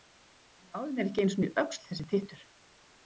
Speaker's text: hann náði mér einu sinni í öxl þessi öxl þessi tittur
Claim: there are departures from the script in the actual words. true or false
true